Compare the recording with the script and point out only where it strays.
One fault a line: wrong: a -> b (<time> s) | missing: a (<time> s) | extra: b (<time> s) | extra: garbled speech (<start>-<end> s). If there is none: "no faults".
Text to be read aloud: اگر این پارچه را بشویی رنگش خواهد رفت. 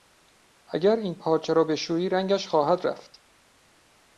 no faults